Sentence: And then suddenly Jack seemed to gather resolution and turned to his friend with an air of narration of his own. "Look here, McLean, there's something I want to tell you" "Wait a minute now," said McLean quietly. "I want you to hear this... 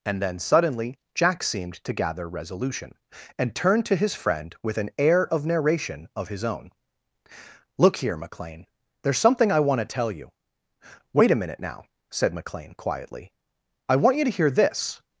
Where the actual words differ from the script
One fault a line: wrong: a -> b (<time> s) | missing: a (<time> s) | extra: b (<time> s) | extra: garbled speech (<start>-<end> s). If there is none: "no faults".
no faults